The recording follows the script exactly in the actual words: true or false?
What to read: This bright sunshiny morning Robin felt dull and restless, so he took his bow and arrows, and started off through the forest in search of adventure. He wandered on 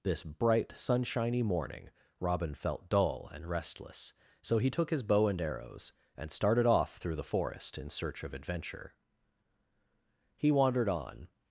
true